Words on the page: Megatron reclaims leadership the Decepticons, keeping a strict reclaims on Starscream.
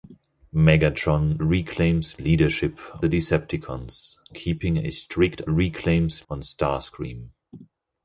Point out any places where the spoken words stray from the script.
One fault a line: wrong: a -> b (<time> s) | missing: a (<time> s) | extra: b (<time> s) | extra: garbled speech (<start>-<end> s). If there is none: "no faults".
no faults